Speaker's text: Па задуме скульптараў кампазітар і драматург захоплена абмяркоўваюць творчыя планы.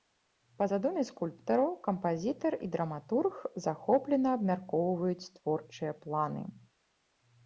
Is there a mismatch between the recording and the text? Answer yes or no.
no